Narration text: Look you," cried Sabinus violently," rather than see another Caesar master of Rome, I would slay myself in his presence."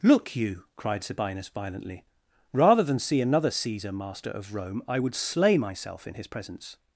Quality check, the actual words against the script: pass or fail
pass